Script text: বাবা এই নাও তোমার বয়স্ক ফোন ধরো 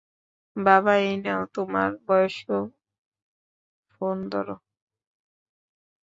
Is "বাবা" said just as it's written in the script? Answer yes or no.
yes